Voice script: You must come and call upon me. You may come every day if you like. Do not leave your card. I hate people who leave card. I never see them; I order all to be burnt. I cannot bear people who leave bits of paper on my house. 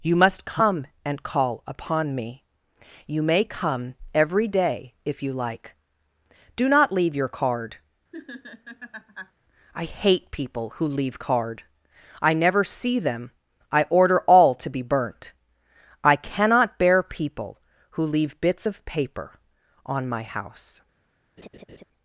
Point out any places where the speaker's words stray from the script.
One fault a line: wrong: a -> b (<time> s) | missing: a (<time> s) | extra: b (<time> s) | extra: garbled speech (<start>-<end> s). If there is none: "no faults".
no faults